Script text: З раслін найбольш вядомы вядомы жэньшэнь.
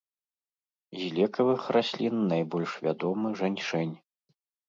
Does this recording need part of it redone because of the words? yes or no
yes